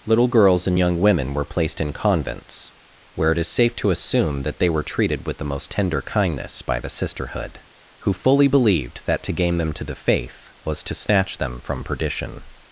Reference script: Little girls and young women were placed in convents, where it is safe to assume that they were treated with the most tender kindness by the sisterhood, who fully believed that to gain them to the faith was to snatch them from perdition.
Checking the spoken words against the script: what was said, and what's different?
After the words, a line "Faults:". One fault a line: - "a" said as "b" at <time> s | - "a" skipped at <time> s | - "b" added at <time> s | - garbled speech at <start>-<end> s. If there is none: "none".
Little girls and young women were placed in convents, where it is safe to assume that they were treated with the most tender kindness by the sisterhood, who fully believed that to gain them to the faith was to snatch them from perdition.
Faults:
none